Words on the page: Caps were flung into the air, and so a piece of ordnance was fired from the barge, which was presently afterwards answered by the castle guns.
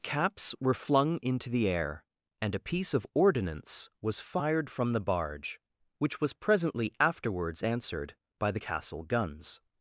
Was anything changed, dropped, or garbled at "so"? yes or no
yes